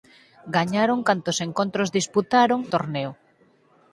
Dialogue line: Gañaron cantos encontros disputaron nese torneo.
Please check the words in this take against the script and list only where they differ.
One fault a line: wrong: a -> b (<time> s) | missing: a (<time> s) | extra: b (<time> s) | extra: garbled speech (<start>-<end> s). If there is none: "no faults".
missing: nese (2.6 s)